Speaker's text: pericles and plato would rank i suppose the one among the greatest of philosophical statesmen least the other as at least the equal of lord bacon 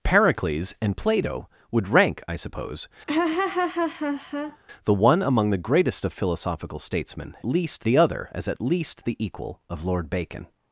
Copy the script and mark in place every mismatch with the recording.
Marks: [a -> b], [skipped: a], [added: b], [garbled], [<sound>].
pericles and plato would rank i suppose [laugh] the one among the greatest of philosophical statesmen least the other as at least the equal of lord bacon